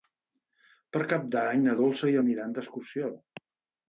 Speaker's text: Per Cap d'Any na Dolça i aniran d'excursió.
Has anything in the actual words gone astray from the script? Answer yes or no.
no